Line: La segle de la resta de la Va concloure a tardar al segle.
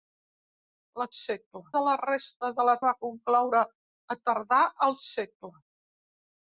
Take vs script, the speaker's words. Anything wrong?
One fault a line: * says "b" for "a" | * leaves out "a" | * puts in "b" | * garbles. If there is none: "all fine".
all fine